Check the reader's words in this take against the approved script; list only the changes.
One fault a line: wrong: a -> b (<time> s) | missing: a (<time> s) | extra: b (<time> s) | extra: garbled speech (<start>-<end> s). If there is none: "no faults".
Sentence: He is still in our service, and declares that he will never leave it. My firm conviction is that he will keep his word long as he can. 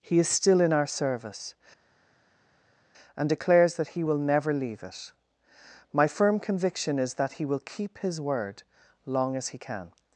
no faults